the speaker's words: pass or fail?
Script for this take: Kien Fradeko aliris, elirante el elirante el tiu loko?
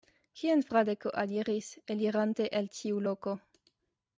fail